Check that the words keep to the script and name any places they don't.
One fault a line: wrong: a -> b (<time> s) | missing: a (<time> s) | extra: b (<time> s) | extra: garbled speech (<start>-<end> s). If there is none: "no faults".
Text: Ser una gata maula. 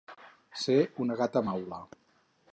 no faults